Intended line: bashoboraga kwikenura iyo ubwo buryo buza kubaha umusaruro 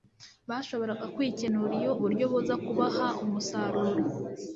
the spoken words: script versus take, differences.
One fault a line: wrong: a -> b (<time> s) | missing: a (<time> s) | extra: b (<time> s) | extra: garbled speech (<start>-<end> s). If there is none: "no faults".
missing: ubwo (1.9 s)